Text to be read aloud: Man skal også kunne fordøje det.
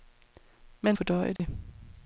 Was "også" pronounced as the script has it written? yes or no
no